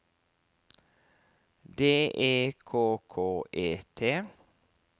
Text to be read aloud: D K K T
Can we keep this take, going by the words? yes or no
no